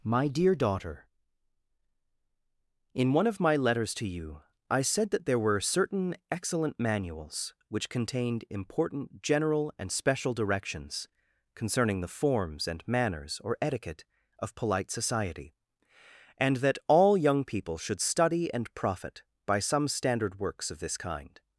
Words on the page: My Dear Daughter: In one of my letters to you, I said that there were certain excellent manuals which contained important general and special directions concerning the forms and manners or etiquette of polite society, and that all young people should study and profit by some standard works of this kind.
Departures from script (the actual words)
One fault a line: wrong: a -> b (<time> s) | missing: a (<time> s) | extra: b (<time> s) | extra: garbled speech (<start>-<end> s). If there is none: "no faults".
no faults